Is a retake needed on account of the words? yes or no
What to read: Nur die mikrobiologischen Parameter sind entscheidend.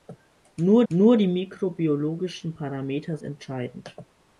yes